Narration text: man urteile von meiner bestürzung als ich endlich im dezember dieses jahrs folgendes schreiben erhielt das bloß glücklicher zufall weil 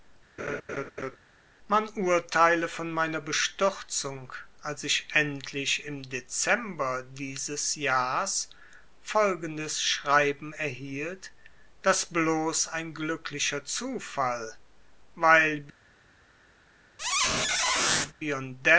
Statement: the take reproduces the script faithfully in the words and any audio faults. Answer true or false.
false